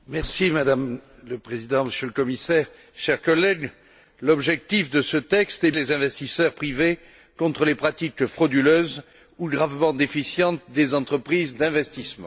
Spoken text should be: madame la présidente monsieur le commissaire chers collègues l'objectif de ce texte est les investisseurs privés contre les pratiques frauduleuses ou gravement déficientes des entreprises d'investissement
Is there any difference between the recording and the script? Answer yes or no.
no